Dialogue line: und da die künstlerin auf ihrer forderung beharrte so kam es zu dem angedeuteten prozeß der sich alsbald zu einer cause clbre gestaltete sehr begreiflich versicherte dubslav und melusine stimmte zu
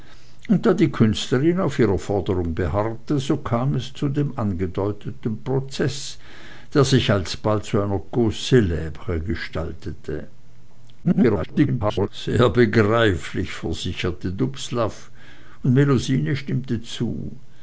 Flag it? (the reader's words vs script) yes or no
yes